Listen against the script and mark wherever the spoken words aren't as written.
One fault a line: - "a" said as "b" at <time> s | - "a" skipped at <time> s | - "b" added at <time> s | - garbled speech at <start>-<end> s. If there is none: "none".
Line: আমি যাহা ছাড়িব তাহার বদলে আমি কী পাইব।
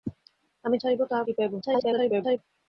- "যাহা" skipped at 0.8 s
- "বদলে আমি" skipped at 1.2 s
- garbled speech at 1.6-2.4 s